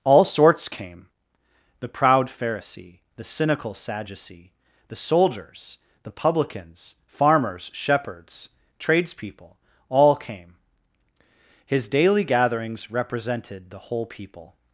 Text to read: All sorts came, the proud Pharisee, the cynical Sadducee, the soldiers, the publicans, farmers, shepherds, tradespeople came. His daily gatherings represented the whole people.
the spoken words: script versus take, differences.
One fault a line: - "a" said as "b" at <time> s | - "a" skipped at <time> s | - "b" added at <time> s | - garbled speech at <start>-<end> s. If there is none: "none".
- "all" added at 9.9 s